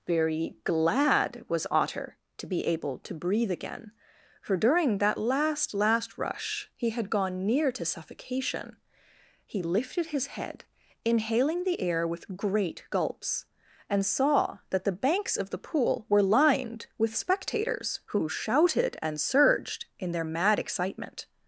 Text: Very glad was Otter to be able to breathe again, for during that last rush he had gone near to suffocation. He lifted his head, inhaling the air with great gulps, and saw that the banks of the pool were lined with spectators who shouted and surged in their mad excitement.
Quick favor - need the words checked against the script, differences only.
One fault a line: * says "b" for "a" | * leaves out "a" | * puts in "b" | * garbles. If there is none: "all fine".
* puts in "last"